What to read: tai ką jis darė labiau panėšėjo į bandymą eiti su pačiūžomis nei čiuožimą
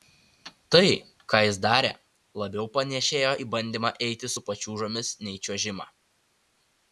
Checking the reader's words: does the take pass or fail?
pass